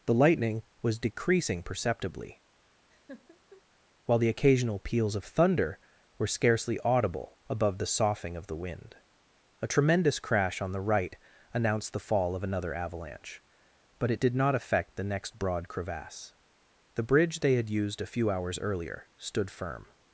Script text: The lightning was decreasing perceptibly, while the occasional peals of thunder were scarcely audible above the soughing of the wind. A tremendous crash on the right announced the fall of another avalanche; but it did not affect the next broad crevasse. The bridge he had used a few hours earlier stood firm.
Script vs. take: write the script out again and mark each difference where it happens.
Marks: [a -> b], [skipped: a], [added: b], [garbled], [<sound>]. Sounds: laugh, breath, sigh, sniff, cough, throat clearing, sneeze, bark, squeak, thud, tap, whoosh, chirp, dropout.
The lightning was decreasing perceptibly, [laugh] while the occasional peals of thunder were scarcely audible above the soughing of the wind. A tremendous crash on the right announced the fall of another avalanche; but it did not affect the next broad crevasse. The bridge [he -> they] had used a few hours earlier stood firm.